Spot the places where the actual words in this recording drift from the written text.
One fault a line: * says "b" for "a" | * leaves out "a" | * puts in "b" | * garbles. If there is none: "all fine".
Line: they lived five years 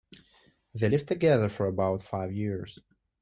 * puts in "together for about"